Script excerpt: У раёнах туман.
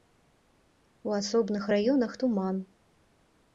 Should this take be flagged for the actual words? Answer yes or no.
yes